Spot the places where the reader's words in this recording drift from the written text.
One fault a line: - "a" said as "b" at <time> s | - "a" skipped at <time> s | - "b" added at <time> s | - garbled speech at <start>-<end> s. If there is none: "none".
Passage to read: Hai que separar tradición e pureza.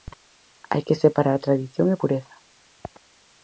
none